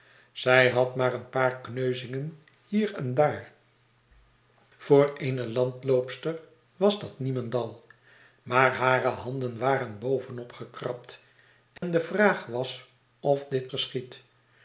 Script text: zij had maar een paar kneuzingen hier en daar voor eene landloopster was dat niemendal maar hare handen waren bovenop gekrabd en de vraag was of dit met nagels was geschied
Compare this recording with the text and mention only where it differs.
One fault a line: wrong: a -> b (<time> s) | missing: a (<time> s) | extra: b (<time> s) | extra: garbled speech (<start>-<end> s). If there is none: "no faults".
missing: met nagels was (13.7 s)